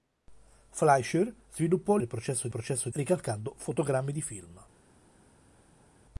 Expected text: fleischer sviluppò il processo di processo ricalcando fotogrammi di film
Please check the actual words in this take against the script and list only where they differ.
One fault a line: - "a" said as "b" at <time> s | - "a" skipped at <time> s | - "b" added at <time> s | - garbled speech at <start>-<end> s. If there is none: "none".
none